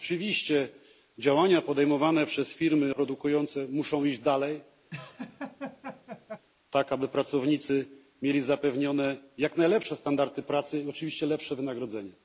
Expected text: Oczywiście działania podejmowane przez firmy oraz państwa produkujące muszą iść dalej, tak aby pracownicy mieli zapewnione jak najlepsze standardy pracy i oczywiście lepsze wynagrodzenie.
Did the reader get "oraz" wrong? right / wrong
wrong